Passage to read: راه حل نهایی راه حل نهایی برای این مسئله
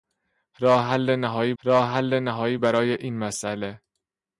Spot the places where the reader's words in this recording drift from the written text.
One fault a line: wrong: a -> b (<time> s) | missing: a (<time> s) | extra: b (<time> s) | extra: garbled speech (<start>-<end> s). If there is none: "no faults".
no faults